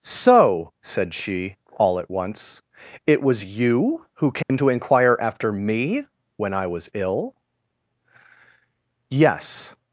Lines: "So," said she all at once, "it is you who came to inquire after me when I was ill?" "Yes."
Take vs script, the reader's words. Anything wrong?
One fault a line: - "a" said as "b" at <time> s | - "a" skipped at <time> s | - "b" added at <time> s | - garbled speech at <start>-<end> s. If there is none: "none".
- "is" said as "was" at 3.2 s